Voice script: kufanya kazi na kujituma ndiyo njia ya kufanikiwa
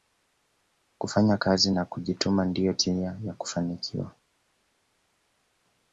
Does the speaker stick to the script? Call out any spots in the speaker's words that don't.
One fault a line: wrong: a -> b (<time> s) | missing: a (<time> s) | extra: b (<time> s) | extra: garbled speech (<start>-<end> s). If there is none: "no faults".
no faults